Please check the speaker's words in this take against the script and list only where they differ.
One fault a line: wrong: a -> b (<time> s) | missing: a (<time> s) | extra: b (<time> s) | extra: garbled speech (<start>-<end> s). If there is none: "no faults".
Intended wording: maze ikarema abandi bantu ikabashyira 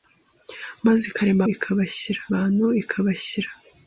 wrong: abandi -> ikabashyira (1.5 s)